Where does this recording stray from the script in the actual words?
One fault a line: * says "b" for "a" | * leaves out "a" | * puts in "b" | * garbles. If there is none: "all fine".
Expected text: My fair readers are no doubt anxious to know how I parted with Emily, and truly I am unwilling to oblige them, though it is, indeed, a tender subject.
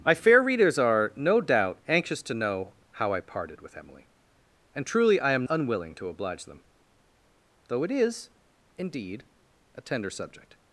all fine